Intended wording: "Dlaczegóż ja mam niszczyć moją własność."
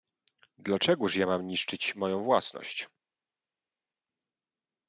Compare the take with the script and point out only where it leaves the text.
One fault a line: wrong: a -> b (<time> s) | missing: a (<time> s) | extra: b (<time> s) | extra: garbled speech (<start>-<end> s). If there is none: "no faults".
no faults